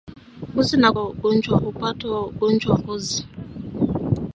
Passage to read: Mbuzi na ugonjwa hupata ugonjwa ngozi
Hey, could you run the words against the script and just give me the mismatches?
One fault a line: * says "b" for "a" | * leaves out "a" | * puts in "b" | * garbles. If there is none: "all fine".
all fine